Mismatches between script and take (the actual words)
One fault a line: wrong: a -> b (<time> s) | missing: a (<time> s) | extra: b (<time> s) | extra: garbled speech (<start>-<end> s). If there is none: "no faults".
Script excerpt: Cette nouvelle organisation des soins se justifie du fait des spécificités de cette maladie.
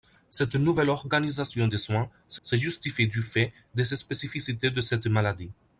extra: se (2.4 s)